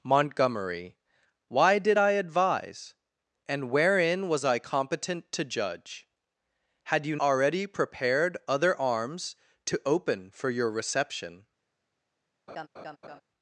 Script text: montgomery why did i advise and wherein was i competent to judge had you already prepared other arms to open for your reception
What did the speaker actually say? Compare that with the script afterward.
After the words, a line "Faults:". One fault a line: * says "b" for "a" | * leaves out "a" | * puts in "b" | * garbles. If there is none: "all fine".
montgomery why did i advise and wherein was i competent to judge had you already prepared other arms to open for your reception
Faults:
all fine